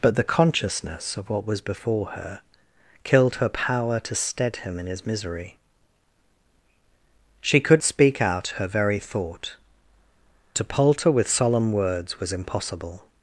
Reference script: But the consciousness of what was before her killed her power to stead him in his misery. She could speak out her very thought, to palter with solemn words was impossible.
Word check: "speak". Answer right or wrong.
right